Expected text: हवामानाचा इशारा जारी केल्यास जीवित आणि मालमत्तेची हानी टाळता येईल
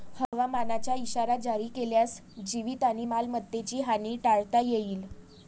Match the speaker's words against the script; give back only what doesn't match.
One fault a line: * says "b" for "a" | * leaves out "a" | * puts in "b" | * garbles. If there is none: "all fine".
all fine